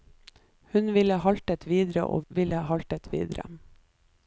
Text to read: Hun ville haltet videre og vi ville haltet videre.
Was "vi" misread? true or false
true